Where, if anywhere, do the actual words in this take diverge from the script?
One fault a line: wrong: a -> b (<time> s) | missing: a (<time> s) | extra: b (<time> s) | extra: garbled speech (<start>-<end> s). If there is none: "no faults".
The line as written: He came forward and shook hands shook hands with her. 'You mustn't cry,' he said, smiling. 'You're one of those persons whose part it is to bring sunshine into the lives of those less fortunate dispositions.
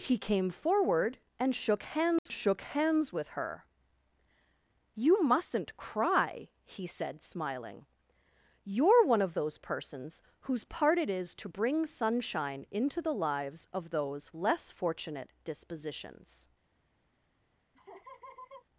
no faults